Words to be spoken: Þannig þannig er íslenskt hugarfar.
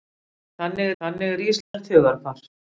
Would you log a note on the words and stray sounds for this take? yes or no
yes